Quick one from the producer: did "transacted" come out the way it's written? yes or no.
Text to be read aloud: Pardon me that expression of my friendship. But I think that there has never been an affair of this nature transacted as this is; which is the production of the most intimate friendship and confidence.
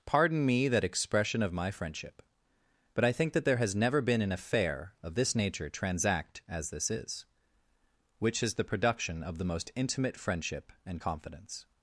no